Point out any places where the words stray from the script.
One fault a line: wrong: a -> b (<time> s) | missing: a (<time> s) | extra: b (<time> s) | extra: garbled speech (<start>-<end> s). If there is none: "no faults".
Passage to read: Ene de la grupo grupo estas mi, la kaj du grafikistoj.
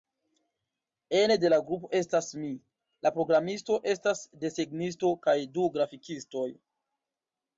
missing: grupo (1.9 s)
extra: programisto estas desegnisto (3.2 s)